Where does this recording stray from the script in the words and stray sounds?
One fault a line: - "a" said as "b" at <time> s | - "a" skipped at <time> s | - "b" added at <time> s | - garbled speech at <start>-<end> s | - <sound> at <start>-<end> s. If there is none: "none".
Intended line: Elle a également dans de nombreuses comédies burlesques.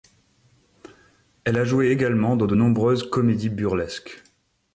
- "joué" added at 1.6 s